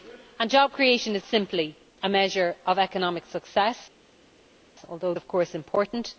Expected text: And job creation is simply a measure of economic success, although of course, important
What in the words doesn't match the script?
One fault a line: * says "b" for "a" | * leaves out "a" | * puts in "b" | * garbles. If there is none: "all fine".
all fine